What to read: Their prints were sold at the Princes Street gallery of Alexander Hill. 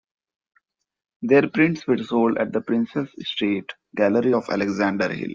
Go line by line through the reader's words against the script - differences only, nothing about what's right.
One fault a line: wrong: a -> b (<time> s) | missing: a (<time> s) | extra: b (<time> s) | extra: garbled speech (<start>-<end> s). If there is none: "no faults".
no faults